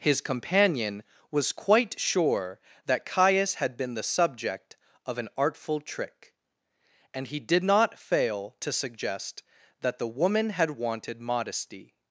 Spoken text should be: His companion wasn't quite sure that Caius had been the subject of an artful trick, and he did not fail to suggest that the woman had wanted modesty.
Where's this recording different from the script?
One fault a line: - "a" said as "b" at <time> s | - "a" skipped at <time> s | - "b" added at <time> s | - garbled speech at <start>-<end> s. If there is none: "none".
- "wasn't" said as "was" at 1.3 s